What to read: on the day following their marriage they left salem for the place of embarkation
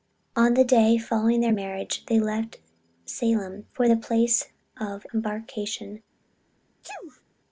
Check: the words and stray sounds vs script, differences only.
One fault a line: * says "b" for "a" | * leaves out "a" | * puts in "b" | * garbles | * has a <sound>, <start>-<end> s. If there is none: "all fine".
* has a sneeze, 6.8-7.2 s